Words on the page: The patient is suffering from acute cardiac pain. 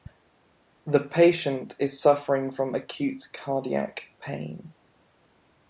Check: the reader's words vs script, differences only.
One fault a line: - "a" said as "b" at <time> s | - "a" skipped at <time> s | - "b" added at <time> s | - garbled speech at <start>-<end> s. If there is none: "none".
none